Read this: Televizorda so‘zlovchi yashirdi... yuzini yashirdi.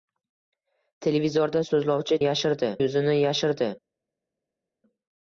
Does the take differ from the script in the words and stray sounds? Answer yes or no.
no